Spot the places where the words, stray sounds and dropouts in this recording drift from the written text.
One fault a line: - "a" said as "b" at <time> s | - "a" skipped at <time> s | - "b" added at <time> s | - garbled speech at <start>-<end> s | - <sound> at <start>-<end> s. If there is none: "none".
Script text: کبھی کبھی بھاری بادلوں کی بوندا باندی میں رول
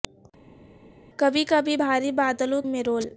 - "کی بوندا باندی" skipped at 2.6 s